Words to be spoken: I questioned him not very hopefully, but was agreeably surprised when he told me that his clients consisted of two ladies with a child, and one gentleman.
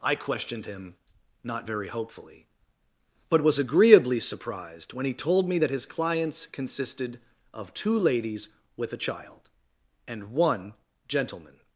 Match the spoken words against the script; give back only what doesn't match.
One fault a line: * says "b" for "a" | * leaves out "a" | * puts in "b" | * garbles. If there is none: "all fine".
all fine